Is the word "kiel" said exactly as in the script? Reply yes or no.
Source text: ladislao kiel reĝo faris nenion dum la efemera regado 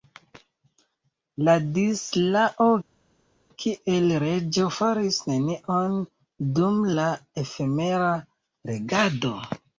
yes